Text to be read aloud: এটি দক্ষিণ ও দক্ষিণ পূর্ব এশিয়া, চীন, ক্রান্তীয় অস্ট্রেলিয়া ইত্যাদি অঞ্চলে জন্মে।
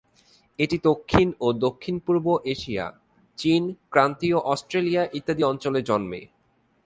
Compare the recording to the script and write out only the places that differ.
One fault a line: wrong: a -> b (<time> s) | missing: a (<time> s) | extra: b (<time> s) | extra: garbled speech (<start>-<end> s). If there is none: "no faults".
no faults